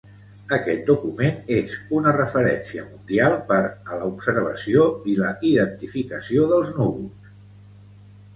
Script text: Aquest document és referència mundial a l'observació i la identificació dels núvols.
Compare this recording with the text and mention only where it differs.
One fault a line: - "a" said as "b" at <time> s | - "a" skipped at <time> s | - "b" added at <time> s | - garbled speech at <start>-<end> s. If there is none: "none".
- "una" added at 2.0 s
- "per" added at 3.5 s